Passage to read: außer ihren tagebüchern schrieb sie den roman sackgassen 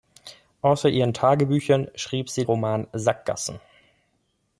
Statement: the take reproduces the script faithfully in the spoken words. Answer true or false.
false